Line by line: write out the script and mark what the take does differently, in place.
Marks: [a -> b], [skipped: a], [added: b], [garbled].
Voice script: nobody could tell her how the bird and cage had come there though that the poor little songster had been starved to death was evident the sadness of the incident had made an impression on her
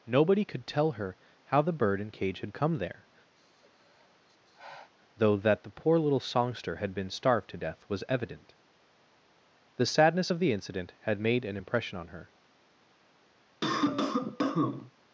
nobody could tell her how the bird and cage had come there though that the poor little songster had been starved to death was evident the sadness of the incident had made an impression on her